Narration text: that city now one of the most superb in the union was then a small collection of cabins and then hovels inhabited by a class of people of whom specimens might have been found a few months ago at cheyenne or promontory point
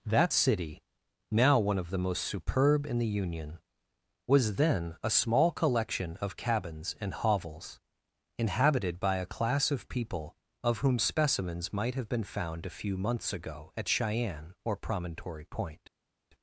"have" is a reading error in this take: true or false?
false